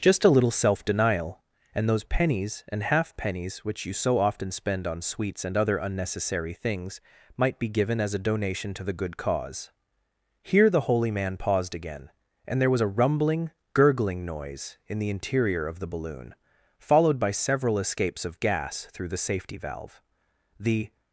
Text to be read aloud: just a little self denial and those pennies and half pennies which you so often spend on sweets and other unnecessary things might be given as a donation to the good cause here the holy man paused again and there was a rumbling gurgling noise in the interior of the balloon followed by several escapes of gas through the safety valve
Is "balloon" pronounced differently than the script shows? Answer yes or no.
no